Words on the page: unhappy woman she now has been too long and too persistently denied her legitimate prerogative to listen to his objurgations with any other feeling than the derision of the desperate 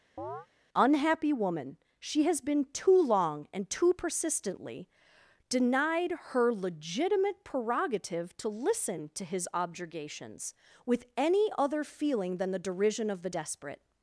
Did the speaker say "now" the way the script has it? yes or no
no